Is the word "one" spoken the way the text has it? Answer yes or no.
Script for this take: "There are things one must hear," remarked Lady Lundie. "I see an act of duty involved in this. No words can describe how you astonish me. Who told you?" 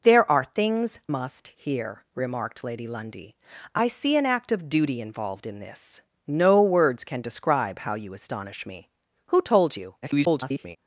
no